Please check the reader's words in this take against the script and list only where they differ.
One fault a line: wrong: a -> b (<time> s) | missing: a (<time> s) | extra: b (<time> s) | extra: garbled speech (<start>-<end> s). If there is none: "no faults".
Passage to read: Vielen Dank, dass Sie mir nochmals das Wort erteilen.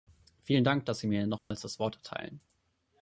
no faults